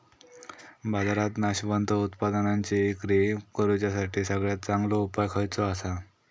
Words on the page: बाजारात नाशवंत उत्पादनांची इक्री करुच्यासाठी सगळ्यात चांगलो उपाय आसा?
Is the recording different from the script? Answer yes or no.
yes